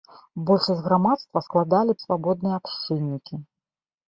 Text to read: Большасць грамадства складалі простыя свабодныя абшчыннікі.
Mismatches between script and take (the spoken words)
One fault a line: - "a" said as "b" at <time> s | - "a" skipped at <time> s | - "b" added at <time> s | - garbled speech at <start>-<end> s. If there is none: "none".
- "простыя" skipped at 2.0 s